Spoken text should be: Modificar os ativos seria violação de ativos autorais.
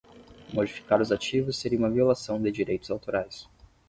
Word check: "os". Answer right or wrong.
right